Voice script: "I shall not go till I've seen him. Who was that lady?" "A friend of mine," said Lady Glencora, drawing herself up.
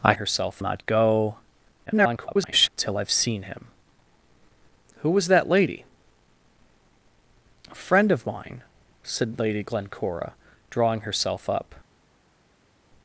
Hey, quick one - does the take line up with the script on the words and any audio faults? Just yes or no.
no